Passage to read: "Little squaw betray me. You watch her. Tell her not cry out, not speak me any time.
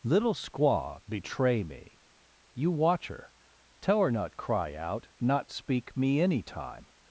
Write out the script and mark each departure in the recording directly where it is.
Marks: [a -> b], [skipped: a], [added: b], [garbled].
"Little squaw betray me. You watch her. Tell her not cry out, not speak me any time.